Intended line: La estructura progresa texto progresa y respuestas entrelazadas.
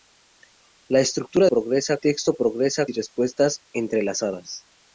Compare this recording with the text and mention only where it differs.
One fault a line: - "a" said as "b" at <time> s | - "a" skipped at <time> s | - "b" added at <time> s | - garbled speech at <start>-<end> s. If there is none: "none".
none